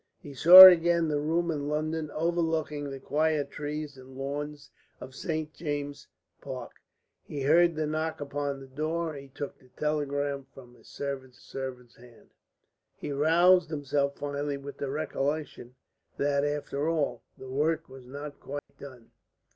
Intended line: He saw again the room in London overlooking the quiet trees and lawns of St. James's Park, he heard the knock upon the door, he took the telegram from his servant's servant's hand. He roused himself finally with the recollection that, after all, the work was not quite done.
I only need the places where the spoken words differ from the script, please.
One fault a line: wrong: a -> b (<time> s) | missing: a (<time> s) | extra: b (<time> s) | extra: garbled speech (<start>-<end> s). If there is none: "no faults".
no faults